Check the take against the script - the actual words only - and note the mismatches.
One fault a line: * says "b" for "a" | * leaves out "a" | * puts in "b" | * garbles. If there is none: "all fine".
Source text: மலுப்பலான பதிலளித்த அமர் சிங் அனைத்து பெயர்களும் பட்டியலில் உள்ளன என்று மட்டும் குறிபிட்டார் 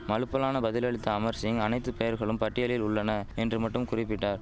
all fine